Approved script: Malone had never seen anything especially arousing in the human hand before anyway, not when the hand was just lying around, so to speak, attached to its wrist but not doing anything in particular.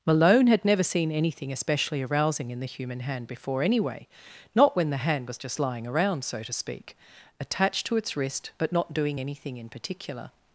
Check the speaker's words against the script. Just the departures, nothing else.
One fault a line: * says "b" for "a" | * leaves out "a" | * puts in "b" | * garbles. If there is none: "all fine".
all fine